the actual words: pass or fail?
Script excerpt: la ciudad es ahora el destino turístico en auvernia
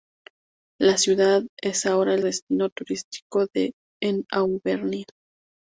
pass